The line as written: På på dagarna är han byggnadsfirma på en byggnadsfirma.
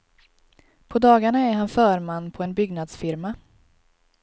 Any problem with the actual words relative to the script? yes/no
yes